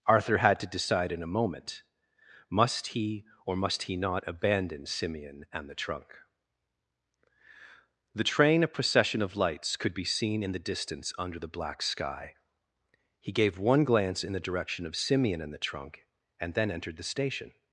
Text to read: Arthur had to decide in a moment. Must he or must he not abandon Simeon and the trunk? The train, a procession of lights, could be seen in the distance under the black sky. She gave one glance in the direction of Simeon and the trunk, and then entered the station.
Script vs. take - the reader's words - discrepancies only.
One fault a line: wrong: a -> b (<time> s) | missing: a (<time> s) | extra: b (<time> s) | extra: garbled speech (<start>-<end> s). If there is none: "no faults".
wrong: She -> He (13.2 s)